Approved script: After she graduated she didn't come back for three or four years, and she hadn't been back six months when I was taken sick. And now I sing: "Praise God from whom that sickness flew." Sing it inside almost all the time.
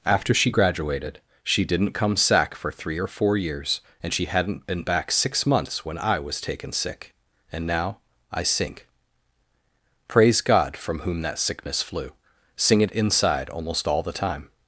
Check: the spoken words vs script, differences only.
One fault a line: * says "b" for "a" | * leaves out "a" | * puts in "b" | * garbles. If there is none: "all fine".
* says "sack" for "back"
* says "sink" for "sing"